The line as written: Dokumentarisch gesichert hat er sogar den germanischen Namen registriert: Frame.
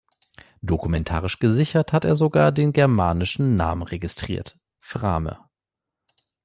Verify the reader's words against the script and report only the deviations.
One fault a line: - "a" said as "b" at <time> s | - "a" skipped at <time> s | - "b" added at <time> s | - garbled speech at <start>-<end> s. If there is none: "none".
none